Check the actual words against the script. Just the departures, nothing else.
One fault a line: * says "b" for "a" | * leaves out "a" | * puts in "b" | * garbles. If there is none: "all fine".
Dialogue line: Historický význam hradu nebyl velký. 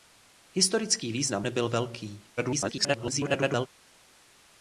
* leaves out "hradu"
* garbles